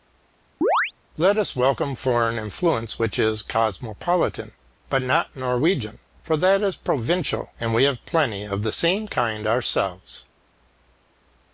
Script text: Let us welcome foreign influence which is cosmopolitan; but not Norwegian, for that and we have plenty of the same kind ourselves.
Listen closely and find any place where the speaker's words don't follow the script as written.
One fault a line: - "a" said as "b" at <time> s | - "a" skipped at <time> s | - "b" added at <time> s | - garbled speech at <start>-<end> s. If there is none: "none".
- "is provincial" added at 6.6 s